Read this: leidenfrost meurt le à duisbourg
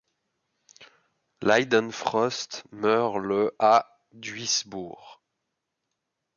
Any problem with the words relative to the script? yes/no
no